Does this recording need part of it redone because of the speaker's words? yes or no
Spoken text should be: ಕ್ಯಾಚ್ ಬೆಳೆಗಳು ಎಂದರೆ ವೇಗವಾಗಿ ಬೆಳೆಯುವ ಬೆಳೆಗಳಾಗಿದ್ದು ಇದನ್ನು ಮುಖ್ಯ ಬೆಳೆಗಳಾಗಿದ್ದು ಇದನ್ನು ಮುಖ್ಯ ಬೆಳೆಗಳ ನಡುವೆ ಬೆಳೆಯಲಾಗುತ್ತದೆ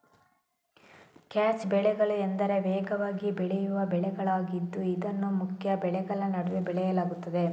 yes